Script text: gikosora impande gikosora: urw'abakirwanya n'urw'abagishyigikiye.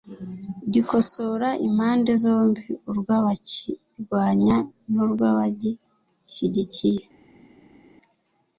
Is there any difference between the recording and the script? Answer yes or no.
yes